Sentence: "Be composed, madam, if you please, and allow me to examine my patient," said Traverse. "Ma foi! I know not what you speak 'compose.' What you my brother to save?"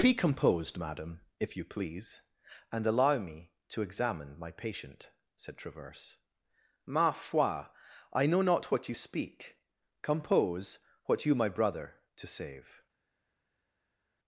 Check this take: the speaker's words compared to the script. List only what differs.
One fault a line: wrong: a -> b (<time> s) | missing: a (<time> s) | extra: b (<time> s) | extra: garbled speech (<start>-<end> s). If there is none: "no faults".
no faults